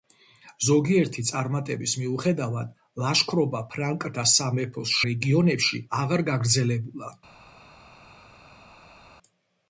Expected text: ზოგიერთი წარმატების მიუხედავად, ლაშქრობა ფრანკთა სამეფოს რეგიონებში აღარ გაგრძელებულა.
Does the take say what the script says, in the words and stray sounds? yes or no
yes